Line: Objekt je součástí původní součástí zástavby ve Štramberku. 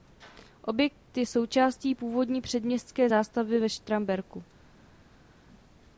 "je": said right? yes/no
yes